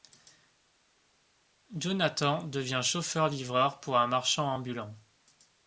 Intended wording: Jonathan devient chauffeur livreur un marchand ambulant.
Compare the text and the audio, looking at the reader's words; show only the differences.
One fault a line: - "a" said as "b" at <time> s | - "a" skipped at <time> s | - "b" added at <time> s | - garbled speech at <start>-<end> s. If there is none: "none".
- "pour" added at 3.8 s